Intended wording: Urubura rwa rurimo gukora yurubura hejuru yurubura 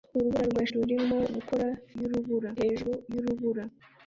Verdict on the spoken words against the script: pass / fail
pass